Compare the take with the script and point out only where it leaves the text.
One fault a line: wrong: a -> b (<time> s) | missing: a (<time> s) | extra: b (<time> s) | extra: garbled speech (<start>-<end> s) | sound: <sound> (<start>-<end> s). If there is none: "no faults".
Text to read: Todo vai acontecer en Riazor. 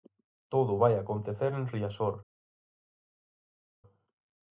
no faults